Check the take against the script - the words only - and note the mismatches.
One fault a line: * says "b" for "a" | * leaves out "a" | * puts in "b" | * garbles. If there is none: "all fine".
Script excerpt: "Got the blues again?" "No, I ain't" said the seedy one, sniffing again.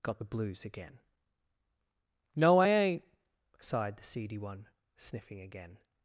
* says "sighed" for "said"